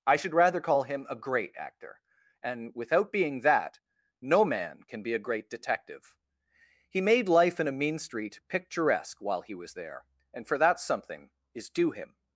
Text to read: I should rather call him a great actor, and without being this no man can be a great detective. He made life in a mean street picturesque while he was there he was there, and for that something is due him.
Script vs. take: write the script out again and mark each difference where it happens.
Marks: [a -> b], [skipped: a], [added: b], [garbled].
I should rather call him a great actor, and without being [this -> that] no man can be a great detective. He made life in a mean street picturesque while he was there [skipped: he was there,] and for that something is due him.